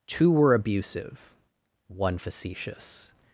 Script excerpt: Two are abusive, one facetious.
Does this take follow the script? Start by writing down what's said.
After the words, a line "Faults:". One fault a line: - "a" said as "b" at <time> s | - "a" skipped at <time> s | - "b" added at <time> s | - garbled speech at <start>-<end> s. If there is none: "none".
Two were abusive, one facetious.
Faults:
- "are" said as "were" at 0.3 s